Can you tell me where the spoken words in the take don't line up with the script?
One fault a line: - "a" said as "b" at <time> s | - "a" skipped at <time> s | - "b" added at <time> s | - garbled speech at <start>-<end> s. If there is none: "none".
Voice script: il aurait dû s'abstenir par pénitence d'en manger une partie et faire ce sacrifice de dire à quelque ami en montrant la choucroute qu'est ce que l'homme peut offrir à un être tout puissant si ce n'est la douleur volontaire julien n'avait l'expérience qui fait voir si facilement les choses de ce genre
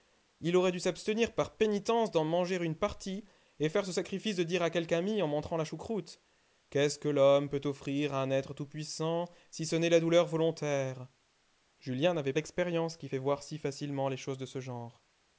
none